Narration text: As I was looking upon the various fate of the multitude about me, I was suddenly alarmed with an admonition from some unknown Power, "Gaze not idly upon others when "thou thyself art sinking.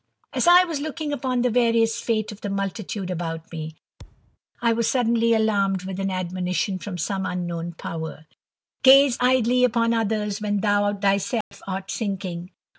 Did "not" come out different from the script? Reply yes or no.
yes